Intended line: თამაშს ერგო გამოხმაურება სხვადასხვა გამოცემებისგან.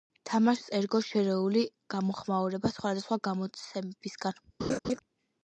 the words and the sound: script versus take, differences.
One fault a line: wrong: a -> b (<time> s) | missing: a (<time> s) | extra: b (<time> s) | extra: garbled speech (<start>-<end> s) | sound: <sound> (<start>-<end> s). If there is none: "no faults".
extra: შერეული (1.1 s)
sound: laugh (4.6-5.0 s)